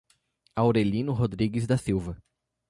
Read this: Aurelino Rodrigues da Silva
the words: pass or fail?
pass